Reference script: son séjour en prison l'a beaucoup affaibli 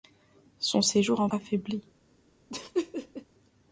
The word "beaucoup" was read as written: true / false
false